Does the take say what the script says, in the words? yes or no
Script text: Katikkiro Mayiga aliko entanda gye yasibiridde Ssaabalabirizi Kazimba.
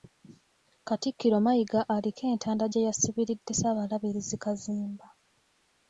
yes